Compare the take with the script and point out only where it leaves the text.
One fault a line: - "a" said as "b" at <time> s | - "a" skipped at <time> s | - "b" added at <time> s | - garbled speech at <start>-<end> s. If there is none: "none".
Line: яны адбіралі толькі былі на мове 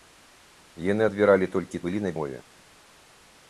none